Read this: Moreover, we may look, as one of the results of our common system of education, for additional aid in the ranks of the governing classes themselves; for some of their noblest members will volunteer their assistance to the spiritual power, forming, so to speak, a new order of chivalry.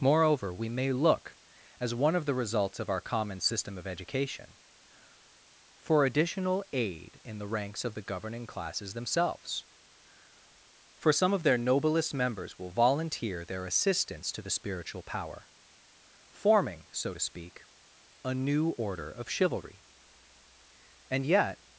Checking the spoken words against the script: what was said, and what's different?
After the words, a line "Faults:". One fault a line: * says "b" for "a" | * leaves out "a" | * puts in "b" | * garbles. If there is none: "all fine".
Moreover, we may look, as one of the results of our common system of education, for additional aid in the ranks of the governing classes themselves; for some of their noblest members will volunteer their assistance to the spiritual power, forming, so to speak, a new order of chivalry. And yet
Faults:
* puts in "And yet"